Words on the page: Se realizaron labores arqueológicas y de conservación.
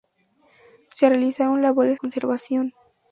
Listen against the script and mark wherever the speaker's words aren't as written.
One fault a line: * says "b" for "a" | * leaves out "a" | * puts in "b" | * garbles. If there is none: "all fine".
* leaves out "arqueológicas y de"